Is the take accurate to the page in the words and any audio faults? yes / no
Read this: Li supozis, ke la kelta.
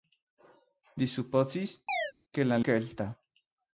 no